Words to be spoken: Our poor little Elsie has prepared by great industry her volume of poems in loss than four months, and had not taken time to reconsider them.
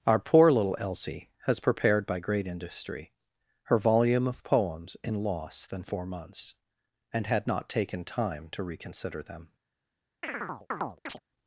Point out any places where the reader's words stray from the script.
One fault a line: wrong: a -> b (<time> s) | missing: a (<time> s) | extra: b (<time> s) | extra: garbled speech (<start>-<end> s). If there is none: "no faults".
no faults